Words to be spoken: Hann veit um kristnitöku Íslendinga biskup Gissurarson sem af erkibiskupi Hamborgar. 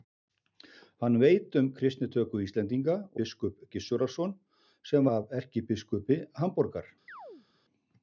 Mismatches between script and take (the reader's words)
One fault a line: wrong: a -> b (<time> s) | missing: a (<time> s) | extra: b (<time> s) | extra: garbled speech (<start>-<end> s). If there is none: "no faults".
no faults